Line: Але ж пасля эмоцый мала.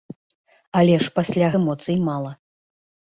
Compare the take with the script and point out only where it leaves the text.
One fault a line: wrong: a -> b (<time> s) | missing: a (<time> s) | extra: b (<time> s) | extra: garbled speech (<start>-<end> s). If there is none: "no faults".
no faults